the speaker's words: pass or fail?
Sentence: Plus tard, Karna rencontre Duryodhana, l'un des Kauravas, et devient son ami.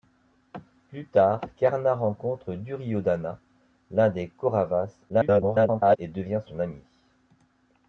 fail